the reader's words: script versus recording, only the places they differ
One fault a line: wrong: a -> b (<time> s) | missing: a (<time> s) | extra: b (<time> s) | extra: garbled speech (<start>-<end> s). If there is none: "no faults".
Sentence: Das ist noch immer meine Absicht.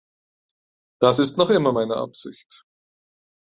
no faults